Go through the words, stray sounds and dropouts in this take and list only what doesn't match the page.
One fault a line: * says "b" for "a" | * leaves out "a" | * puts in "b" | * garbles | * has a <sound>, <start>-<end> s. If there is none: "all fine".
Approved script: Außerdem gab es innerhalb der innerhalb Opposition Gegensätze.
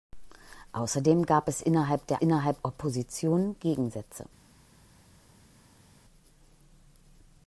all fine